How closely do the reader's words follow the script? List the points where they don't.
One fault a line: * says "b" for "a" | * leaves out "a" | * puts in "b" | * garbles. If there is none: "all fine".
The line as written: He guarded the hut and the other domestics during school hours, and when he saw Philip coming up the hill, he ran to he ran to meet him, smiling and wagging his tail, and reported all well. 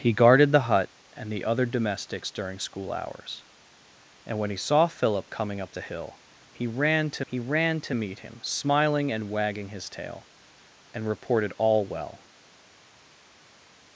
all fine